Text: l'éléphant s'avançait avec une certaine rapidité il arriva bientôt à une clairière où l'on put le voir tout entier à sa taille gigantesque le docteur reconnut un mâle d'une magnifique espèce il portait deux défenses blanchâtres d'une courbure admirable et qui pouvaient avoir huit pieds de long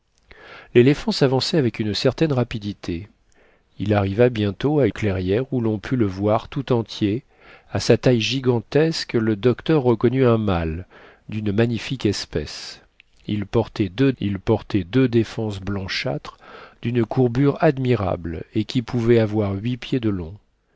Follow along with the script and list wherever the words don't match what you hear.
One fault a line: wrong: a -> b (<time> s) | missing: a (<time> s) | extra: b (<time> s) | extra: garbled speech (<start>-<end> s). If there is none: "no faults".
missing: une (4.9 s)
extra: il portait deux (14.2 s)